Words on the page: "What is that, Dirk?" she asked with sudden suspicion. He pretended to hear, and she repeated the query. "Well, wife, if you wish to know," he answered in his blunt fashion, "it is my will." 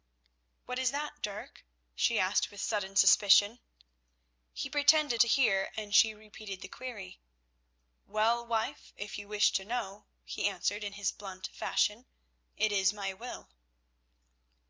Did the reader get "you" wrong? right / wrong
right